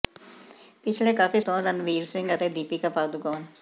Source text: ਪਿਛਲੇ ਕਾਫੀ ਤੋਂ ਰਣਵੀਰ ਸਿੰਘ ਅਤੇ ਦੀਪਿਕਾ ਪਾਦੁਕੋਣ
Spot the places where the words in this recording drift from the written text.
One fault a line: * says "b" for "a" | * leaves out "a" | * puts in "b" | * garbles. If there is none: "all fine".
all fine